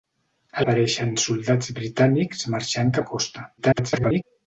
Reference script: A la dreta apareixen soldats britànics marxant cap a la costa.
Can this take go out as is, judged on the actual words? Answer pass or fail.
fail